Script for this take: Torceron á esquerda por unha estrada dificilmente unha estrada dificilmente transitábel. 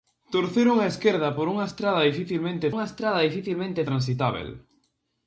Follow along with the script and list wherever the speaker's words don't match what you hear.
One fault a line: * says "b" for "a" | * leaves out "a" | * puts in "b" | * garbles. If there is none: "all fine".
all fine